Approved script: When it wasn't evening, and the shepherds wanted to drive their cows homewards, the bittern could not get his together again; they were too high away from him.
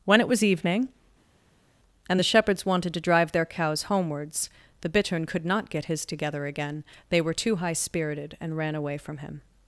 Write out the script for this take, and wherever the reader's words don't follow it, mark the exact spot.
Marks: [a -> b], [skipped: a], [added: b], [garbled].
When it [wasn't -> was] evening, and the shepherds wanted to drive their cows homewards, the bittern could not get his together again; they were too high [added: spirited and ran] away from him.